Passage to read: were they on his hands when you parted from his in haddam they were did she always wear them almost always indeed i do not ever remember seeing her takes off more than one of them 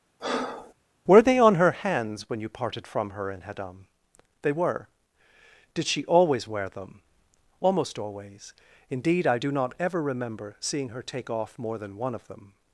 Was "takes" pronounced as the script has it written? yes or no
no